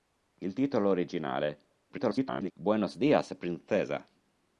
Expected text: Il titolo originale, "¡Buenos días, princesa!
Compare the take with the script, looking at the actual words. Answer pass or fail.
fail